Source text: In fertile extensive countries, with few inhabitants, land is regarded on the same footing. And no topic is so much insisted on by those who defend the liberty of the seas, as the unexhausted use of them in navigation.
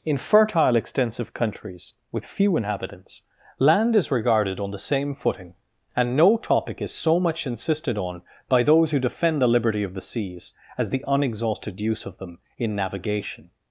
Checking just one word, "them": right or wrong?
right